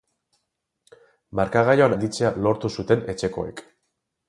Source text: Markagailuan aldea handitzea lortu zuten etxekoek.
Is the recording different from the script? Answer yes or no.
yes